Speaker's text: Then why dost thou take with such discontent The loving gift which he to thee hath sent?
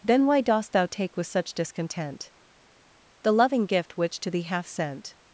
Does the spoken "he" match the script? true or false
false